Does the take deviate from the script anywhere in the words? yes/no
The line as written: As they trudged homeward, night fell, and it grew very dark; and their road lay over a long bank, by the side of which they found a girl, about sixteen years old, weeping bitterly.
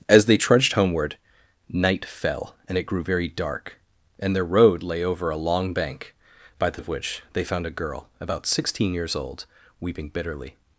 yes